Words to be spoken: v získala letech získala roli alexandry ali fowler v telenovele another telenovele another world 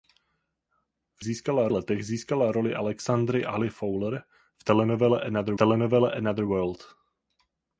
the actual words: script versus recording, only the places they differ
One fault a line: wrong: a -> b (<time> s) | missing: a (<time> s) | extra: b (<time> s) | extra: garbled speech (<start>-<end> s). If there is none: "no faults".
no faults